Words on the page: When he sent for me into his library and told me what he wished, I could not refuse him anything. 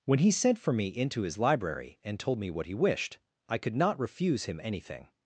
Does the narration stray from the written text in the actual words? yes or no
no